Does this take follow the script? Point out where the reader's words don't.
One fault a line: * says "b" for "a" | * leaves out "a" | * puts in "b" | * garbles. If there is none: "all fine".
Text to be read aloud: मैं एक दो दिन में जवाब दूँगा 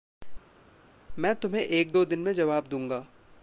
* puts in "तुम्हें"